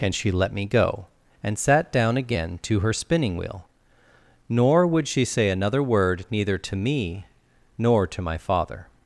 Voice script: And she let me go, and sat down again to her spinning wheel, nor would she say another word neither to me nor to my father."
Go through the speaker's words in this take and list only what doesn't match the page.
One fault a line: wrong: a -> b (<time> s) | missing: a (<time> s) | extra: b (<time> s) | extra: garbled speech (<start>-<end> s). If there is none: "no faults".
no faults